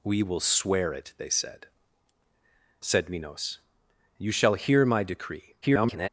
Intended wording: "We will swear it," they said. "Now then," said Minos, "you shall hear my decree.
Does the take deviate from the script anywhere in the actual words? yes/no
yes